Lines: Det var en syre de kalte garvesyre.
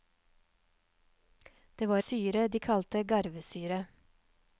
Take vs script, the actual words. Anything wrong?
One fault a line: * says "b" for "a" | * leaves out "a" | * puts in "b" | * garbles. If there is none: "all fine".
* leaves out "en"